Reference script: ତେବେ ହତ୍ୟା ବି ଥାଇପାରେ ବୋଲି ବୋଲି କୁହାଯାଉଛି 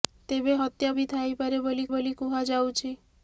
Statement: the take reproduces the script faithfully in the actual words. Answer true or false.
true